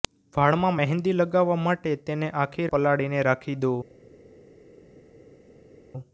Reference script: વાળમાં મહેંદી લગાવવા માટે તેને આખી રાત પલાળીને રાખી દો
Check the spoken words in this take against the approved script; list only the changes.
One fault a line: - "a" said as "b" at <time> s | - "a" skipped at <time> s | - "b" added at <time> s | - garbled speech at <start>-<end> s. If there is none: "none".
- "રાત" skipped at 2.7 s